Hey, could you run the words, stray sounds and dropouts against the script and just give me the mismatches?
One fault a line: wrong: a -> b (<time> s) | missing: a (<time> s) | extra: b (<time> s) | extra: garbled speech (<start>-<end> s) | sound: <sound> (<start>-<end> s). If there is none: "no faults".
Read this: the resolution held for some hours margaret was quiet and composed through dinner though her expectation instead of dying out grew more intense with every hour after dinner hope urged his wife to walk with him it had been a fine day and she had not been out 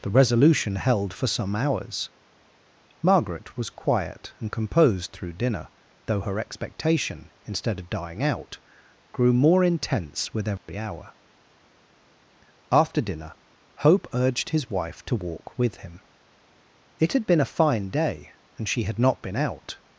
sound: dropout (10.6-10.7 s)